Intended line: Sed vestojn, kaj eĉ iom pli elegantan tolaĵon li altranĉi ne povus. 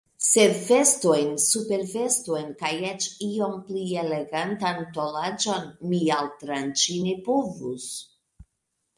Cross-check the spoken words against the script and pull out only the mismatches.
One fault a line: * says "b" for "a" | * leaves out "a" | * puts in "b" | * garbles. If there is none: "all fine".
* puts in "supervestojn"
* says "mi" for "li"